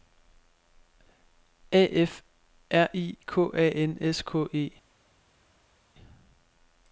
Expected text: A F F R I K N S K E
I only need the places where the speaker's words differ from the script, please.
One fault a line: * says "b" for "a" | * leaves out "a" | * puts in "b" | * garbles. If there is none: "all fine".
* leaves out "F"
* puts in "A"